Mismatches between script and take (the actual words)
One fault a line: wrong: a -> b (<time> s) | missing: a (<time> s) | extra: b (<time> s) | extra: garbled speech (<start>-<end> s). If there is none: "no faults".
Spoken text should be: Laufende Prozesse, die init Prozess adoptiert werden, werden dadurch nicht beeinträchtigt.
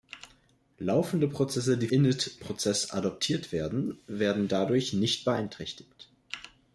no faults